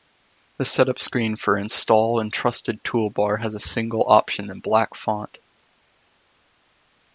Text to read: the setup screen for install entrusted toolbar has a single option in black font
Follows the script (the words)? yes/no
yes